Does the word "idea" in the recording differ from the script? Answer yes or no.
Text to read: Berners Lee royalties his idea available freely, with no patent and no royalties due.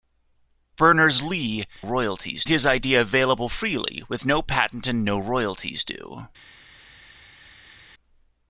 no